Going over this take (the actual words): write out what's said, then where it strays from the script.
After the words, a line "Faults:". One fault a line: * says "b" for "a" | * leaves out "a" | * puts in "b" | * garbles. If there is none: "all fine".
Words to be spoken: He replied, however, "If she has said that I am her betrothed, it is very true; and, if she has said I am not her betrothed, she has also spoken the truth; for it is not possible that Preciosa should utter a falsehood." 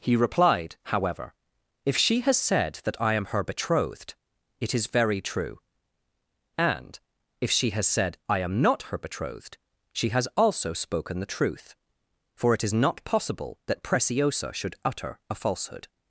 He replied, however, "If she has said that I am her betrothed, it is very true; and, if she has said I am not her betrothed, she has also spoken the truth; for it is not possible that Preciosa should utter a falsehood."
Faults:
all fine